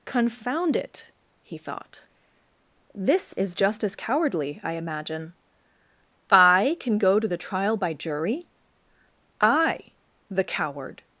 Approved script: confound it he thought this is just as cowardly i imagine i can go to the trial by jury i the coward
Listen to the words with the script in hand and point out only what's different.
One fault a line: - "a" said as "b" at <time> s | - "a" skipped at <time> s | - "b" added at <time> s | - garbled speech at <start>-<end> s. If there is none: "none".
none